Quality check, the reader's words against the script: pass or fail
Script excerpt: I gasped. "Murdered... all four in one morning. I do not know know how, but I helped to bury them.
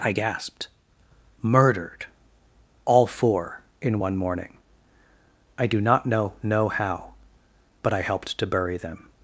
pass